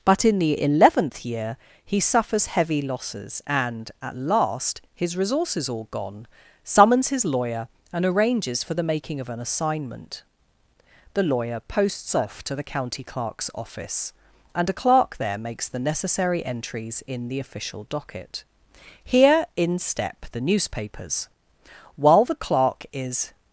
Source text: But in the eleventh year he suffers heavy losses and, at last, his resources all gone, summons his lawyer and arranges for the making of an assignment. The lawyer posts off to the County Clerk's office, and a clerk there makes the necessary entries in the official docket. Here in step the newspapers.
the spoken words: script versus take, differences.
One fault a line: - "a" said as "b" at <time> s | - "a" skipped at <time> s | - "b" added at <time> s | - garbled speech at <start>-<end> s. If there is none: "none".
- "While the clerk is" added at 21.9 s